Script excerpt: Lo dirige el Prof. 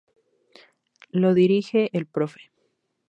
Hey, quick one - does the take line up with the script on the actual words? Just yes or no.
yes